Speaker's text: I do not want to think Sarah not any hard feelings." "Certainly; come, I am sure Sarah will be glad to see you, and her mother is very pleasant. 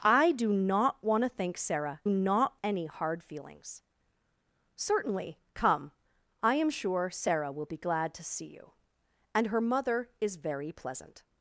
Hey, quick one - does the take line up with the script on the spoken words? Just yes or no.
yes